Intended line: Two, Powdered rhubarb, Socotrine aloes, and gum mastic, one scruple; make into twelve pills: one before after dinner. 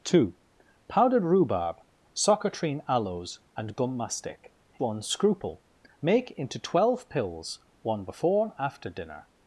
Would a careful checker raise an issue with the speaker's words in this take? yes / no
no